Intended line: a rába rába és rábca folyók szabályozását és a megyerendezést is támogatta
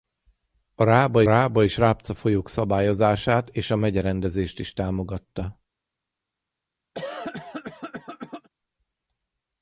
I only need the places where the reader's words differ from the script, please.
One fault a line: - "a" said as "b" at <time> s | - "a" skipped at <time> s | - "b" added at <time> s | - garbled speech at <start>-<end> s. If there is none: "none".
none